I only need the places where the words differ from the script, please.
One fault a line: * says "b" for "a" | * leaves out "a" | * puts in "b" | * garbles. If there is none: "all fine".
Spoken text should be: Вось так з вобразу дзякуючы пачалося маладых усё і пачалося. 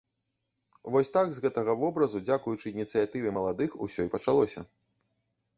* puts in "гэтага"
* says "ініцыятыве" for "пачалося"